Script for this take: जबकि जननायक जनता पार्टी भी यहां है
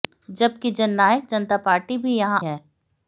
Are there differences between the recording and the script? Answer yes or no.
no